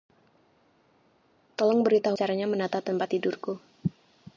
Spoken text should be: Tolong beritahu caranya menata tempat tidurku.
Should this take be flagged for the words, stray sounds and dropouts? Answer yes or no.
no